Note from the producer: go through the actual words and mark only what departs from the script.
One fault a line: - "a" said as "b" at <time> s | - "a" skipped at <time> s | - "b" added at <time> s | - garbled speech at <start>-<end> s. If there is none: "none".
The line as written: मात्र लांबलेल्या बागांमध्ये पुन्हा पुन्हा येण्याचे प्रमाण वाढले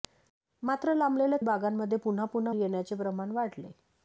none